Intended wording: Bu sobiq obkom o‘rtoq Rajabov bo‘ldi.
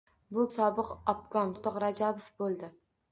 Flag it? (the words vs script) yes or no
no